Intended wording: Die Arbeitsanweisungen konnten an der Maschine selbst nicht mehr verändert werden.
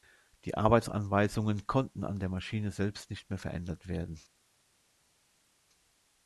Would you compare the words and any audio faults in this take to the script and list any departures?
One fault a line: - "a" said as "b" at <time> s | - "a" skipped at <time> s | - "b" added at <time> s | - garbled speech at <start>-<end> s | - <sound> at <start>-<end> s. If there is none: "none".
none